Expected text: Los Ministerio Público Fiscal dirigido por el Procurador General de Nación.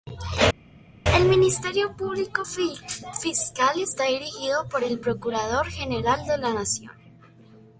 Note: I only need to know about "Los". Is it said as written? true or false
false